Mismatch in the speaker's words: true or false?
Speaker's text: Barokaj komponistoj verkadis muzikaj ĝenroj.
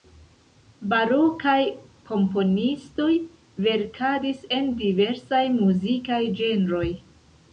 true